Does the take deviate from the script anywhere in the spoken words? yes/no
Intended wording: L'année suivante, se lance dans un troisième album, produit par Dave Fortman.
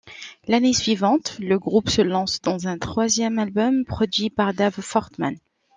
yes